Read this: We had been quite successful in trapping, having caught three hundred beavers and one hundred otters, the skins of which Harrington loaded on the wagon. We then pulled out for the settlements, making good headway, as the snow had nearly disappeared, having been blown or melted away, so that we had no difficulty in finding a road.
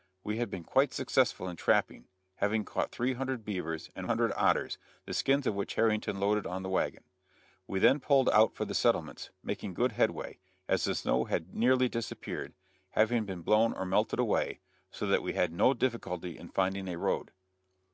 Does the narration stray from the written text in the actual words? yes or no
yes